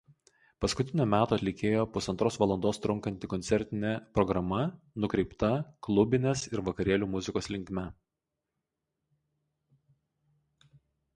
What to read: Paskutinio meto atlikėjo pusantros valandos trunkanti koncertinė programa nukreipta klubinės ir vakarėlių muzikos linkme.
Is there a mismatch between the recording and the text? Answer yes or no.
no